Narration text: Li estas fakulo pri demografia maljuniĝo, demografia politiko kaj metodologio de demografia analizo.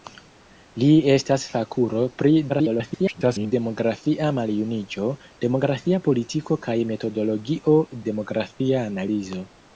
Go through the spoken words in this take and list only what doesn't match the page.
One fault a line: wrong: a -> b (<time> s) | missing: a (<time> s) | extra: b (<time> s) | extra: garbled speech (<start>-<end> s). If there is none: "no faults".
extra: garbled speech (2.5-3.5 s)
missing: de (7.8 s)